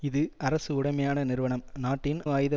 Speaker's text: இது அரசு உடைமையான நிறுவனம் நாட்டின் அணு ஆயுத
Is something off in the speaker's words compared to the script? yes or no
yes